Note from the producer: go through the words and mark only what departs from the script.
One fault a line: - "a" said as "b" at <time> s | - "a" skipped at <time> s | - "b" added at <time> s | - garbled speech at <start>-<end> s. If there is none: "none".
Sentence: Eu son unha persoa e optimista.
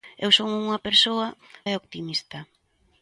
none